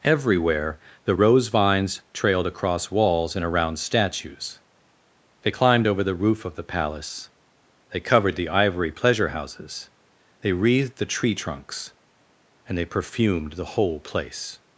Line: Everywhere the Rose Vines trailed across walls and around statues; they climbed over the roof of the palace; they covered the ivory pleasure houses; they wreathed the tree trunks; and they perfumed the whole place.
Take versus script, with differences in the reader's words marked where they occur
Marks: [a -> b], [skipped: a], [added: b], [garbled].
Everywhere the Rose Vines trailed across walls and around statues; they climbed over the roof of the palace; they covered the ivory pleasure houses; they wreathed the tree trunks; and they perfumed the whole place.